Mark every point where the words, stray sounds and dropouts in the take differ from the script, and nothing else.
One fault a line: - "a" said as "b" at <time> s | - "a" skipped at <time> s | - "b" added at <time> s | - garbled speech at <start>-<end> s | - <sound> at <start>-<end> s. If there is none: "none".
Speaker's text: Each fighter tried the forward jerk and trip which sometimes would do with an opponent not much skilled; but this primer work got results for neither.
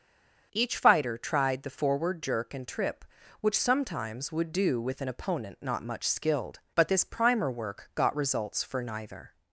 none